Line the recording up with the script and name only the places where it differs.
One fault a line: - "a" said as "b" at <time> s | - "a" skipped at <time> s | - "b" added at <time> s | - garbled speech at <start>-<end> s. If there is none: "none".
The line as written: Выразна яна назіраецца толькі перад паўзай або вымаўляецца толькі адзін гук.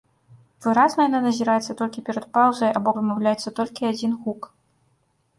none